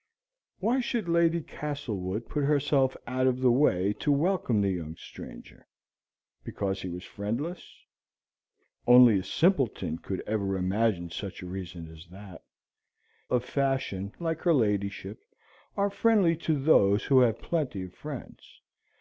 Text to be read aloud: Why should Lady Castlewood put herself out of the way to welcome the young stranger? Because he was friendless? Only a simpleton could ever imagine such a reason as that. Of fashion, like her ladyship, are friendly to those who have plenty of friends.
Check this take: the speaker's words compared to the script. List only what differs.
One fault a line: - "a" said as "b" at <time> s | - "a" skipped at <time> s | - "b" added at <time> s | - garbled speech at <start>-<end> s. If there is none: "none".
none